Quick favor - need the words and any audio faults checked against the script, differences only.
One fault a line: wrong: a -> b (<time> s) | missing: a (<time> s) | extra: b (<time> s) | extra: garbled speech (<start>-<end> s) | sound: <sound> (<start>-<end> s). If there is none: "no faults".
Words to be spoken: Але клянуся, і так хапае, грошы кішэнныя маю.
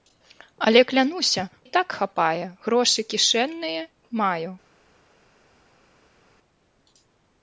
no faults